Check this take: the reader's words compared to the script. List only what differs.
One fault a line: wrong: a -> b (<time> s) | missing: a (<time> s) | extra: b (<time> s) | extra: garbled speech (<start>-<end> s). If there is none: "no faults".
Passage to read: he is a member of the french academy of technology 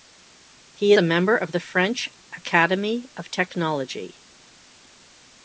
missing: is (0.9 s)